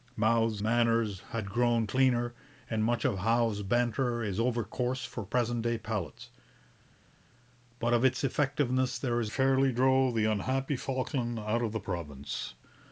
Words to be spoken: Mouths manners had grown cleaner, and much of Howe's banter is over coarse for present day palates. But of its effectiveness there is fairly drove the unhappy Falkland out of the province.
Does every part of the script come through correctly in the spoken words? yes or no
yes